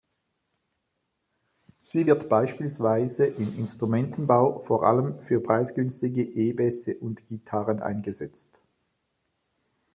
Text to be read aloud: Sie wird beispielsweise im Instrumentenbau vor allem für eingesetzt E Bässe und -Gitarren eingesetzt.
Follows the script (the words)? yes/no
no